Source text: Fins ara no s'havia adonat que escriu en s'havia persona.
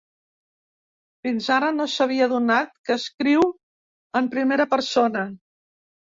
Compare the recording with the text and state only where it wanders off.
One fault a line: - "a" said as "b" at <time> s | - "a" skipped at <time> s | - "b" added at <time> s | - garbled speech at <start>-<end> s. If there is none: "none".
- "s'havia" said as "primera" at 4.4 s